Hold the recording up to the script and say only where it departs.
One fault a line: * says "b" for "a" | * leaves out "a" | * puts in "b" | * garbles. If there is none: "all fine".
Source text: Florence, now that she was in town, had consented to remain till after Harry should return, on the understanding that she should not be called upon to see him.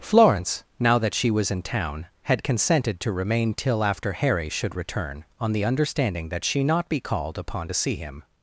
* leaves out "should"